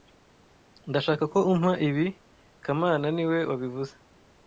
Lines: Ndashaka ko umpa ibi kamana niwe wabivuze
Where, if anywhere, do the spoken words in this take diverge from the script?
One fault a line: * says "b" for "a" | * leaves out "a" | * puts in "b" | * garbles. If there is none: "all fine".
all fine